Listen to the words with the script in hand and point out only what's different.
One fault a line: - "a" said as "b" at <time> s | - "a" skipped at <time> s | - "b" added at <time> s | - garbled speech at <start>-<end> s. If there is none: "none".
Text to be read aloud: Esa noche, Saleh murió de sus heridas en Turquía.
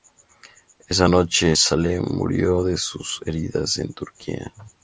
none